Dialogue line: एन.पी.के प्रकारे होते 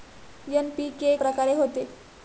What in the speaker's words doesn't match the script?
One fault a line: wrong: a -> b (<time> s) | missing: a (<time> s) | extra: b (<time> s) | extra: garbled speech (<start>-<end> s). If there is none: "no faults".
no faults